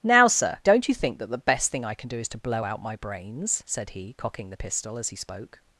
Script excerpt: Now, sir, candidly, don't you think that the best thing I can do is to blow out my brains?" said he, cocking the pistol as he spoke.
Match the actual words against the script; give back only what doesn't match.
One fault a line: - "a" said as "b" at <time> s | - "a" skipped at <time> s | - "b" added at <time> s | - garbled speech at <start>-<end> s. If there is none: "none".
- "candidly" skipped at 0.6 s